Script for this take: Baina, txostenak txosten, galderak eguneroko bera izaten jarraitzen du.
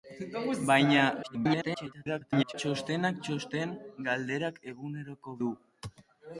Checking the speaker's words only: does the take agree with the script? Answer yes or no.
no